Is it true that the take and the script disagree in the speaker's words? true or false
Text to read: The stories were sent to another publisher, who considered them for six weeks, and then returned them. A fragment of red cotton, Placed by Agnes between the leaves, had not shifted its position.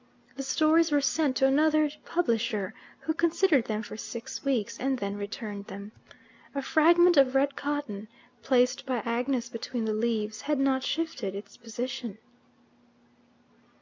false